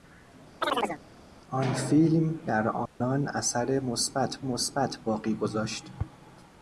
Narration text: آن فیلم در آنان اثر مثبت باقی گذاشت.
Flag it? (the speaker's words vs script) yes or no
yes